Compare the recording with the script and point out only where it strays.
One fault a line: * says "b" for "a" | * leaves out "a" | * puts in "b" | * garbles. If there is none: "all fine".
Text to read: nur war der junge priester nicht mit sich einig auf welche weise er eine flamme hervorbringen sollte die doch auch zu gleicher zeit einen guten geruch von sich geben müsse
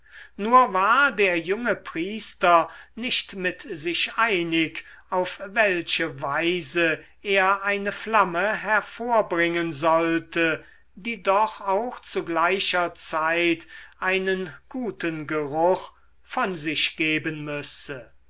all fine